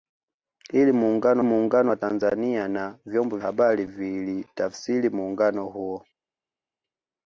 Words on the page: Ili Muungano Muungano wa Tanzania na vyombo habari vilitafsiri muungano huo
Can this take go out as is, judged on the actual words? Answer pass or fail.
pass